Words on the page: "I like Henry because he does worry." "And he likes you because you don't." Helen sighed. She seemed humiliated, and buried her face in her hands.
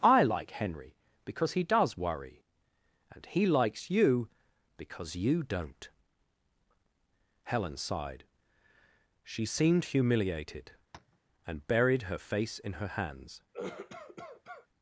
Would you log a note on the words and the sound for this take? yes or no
yes